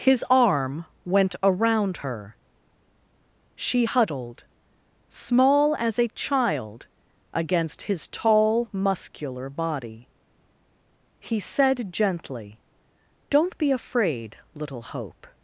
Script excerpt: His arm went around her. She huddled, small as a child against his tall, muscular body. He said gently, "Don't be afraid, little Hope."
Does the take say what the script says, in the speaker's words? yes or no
yes